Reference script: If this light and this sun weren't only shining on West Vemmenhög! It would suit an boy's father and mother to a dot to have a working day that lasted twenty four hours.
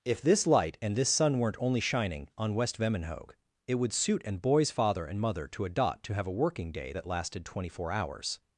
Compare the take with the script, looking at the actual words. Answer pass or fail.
pass